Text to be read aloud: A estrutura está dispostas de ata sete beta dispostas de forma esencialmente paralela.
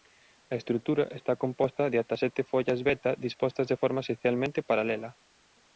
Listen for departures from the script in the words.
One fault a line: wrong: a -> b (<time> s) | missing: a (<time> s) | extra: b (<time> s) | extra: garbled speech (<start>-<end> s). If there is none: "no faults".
wrong: dispostas -> composta (1.4 s)
extra: follas (2.5 s)